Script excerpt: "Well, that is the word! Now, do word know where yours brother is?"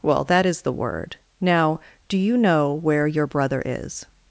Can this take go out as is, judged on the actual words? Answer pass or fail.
fail